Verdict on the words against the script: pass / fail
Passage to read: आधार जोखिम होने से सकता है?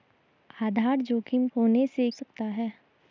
pass